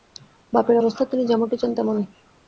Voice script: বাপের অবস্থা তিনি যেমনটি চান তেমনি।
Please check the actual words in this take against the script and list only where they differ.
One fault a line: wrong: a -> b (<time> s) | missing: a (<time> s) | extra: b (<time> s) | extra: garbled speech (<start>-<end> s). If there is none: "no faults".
no faults